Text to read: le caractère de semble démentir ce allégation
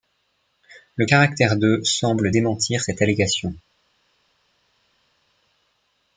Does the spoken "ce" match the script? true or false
false